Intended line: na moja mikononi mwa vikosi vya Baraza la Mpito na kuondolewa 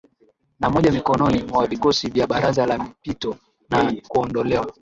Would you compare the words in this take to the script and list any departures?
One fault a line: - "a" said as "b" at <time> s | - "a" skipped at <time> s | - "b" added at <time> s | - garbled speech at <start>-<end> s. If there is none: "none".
none